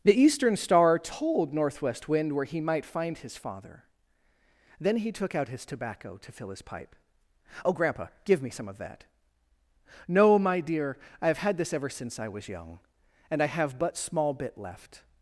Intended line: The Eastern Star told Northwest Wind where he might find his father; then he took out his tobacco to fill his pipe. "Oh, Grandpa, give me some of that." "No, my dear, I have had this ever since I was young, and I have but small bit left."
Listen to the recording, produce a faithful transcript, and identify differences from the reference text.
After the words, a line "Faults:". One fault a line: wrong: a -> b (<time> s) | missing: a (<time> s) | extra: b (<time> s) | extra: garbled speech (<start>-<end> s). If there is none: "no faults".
The Eastern Star told Northwest Wind where he might find his father; then he took out his tobacco to fill his pipe. "Oh, Grandpa, give me some of that." "No, my dear, I have had this ever since I was young, and I have but small bit left."
Faults:
no faults